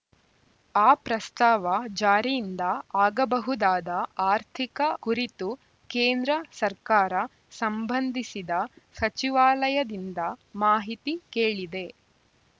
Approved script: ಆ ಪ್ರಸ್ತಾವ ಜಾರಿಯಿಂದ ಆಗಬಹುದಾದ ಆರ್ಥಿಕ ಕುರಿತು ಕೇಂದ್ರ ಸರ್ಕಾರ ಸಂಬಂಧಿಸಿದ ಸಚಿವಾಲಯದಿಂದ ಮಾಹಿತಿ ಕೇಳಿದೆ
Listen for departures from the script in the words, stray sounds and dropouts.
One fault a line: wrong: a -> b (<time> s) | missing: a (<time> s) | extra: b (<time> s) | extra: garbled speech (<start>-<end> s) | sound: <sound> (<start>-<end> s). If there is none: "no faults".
no faults